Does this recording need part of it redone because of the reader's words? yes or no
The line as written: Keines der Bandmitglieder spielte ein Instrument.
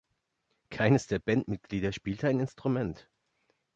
no